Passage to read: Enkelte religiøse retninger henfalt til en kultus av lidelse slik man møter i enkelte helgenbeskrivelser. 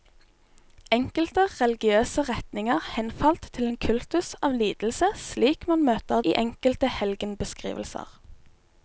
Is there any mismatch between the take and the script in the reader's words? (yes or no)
no